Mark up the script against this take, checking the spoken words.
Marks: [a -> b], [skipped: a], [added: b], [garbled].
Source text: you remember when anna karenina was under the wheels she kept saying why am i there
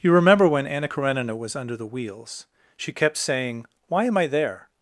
you remember when anna karenina was under the wheels she kept saying why am i there